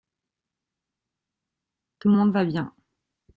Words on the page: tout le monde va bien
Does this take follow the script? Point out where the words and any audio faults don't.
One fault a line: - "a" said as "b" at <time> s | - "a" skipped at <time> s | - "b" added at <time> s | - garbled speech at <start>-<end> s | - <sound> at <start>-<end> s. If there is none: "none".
none